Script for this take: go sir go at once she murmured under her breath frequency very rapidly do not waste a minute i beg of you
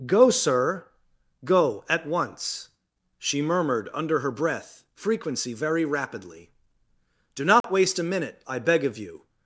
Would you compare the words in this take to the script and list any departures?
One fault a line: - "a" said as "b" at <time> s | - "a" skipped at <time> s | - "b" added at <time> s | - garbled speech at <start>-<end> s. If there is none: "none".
none